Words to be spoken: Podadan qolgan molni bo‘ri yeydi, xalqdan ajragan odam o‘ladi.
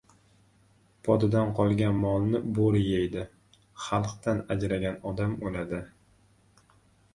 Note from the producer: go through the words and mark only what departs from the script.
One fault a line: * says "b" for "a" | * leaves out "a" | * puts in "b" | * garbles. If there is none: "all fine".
all fine